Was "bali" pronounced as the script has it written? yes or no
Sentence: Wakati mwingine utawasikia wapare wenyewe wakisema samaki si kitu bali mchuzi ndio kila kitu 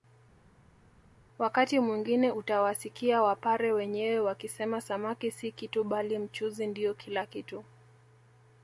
yes